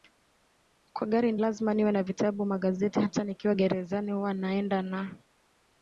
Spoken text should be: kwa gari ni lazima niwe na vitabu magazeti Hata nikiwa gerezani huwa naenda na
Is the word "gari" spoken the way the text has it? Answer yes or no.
yes